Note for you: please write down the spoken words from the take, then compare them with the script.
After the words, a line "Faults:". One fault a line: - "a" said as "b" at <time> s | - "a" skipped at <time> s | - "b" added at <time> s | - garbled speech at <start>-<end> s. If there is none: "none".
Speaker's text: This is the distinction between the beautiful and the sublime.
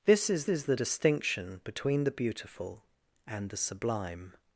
This is is the distinction between the beautiful and the sublime.
Faults:
- "is" added at 0.5 s